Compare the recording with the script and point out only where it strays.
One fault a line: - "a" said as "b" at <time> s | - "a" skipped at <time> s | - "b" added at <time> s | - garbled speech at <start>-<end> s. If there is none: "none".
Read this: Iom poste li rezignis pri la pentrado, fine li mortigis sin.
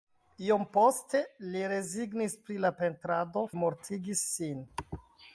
- "fine" skipped at 3.5 s